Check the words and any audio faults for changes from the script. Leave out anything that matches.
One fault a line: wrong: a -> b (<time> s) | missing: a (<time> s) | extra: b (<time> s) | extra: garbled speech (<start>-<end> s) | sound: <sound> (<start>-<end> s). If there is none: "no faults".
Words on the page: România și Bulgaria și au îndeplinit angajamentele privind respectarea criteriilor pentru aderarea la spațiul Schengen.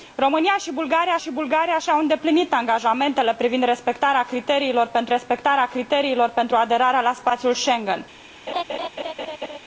extra: Bulgaria și (1.3 s)
extra: respectarea criteriilor pentru (5.1 s)
sound: laugh (8.5-9.6 s)